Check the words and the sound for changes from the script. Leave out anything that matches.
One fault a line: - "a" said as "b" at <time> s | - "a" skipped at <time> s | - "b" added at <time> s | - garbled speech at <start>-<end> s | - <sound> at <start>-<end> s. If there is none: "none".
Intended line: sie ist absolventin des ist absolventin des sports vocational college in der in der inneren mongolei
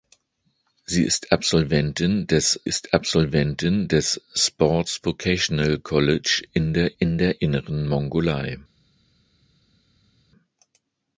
none